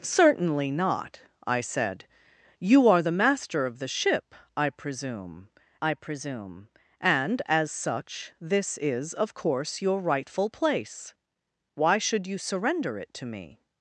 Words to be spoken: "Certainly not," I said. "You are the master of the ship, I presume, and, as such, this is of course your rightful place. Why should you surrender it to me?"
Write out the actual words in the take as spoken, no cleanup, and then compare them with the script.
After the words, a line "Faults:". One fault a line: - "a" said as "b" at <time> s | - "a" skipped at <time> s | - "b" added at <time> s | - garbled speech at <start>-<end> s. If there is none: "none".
"Certainly not," I said. "You are the master of the ship, I presume I presume, and, as such, this is of course your rightful place. Why should you surrender it to me?"
Faults:
- "I presume" added at 5.8 s